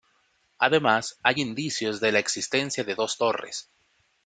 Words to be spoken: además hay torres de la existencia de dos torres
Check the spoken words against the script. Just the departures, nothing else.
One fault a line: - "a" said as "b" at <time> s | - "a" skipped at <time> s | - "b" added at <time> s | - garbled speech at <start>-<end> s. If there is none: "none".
- "torres" said as "indicios" at 1.4 s